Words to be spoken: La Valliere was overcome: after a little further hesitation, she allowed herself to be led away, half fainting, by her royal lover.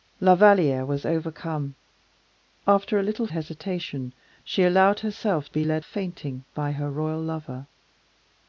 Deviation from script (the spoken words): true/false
true